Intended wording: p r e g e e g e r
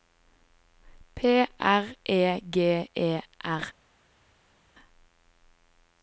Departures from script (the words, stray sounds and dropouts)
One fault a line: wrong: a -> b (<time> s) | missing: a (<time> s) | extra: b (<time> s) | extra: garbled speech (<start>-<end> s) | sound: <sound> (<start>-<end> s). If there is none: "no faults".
missing: e g e (3.2 s)